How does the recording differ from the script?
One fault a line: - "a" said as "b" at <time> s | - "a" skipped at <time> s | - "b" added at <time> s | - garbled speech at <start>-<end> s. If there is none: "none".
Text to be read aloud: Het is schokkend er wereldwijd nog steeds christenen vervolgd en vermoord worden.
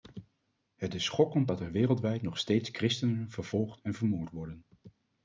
- "dat" added at 1.4 s